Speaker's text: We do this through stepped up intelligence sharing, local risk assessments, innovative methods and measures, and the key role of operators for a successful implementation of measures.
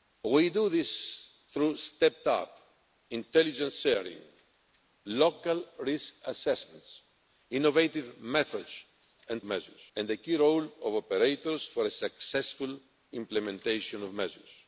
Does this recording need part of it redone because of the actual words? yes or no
no